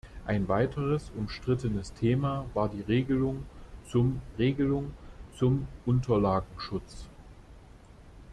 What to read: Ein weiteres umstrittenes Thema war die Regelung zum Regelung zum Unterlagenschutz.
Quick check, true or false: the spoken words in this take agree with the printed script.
true